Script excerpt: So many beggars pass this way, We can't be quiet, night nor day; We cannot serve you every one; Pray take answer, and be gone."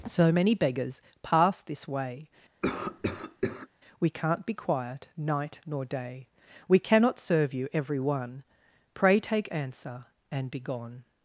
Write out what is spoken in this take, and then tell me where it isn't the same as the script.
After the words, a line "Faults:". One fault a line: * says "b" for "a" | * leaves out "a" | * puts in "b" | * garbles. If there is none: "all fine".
So many beggars pass this way, We can't be quiet, night nor day; We cannot serve you every one; Pray take answer, and be gone."
Faults:
all fine